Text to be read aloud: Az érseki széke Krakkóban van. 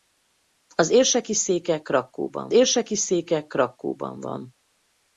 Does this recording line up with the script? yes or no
no